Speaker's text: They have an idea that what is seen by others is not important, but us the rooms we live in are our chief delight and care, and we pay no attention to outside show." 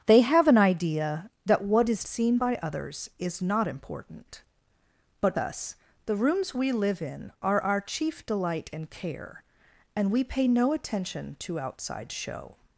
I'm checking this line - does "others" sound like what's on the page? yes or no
yes